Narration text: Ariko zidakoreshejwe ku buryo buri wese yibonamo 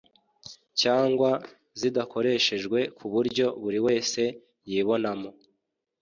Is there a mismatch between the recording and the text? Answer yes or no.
yes